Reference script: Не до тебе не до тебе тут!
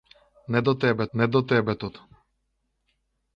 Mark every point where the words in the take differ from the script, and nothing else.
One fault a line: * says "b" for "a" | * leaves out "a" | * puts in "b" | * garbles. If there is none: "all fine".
all fine